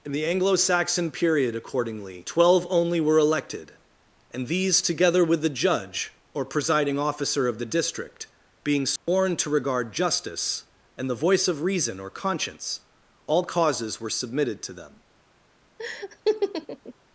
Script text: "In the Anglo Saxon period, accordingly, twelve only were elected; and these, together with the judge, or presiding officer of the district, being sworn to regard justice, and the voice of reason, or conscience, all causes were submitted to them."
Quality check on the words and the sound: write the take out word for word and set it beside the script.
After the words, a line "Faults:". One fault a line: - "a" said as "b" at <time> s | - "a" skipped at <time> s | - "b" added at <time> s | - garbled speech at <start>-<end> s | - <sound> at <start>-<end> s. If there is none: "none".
"In the Anglo Saxon period, accordingly, twelve only were elected; and these, together with the judge, or presiding officer of the district, being sworn to regard justice, and the voice of reason, or conscience, all causes were submitted to them."
Faults:
- dropout at 9.0-9.1 s
- laugh at 15.8-16.9 s